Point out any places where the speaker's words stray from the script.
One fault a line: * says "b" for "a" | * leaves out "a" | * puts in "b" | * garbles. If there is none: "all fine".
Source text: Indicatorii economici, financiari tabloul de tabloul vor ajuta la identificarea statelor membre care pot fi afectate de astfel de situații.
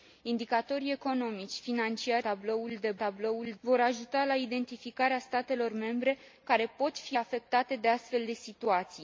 all fine